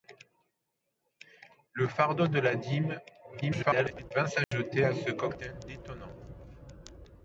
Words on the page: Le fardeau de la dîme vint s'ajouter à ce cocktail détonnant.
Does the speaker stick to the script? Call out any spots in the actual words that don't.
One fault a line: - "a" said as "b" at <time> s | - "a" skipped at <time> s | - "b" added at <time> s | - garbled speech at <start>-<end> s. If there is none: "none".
- garbled speech at 3.4-4.1 s